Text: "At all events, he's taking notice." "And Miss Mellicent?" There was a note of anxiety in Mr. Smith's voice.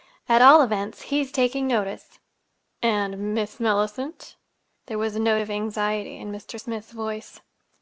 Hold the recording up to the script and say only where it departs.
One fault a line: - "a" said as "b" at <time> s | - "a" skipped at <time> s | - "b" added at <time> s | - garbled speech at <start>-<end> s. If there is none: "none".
none